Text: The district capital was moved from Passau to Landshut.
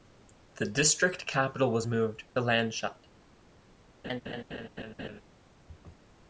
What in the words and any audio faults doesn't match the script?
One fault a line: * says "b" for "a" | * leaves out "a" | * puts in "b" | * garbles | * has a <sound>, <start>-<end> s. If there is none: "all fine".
* leaves out "from Passau to"
* has a laugh, 4.0-5.2 s